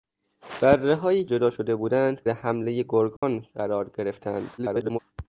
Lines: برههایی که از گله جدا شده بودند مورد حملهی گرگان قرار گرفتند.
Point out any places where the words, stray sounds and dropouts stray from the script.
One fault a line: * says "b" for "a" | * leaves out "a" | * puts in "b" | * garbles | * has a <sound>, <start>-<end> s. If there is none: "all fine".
* leaves out "که از گله"
* leaves out "مورد"
* has a dropout, 3.2-3.2 s
* garbles